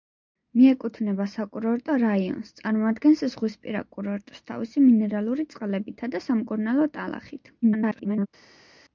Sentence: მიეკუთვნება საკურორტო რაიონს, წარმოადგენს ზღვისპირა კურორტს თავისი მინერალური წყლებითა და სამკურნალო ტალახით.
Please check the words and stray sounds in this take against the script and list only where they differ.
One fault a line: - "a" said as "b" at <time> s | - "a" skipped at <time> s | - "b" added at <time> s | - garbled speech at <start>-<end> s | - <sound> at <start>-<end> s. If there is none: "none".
- garbled speech at 7.6-8.3 s